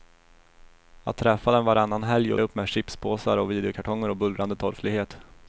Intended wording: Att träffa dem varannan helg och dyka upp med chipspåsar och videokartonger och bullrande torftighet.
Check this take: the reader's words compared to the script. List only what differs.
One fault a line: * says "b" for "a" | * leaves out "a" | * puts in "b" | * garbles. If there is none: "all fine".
* leaves out "dyka"